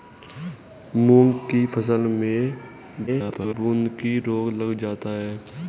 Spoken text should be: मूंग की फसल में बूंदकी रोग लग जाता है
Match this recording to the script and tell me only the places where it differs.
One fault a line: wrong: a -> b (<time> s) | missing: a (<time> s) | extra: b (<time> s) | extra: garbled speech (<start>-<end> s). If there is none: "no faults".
extra: garbled speech (3.1-3.5 s)